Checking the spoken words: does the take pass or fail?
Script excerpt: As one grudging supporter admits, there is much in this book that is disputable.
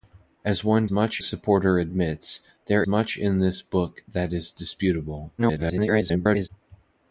fail